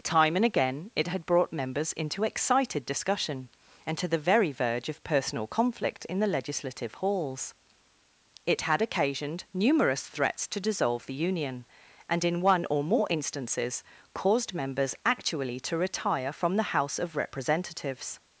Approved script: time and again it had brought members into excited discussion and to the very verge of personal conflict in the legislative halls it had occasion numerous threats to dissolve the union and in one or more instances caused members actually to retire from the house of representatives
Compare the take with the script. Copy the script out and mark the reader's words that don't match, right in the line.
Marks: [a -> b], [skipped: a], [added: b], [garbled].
time and again it had brought members into excited discussion and to the very verge of personal conflict in the legislative halls it had [occasion -> occasioned] numerous threats to dissolve the union and in one or more instances caused members actually to retire from the house of representatives